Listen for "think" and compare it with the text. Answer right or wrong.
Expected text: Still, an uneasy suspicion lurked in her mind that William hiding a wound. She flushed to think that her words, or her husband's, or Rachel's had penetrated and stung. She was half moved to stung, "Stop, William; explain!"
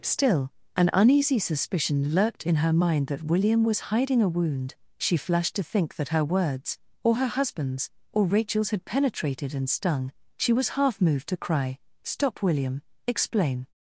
right